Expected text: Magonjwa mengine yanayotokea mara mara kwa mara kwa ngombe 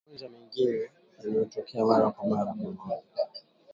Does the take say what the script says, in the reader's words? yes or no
no